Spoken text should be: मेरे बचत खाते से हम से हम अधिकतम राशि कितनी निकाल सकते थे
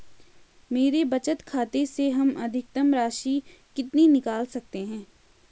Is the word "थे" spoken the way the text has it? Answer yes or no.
no